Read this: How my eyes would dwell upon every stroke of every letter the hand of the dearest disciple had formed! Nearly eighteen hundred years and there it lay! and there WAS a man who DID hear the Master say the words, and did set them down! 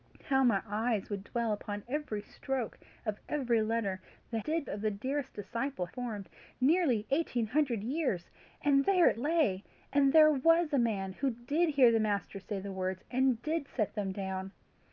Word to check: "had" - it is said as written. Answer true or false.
false